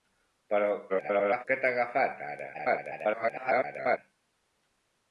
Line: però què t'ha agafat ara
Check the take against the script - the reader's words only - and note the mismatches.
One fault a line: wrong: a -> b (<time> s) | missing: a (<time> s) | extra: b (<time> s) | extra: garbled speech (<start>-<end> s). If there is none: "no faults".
extra: garbled speech (0.9-1.5 s)
extra: garbled speech (2.5-4.0 s)